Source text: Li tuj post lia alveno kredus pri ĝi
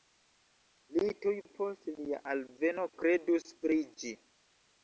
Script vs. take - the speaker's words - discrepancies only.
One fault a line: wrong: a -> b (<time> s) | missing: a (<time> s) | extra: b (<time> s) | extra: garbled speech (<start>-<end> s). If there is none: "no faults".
no faults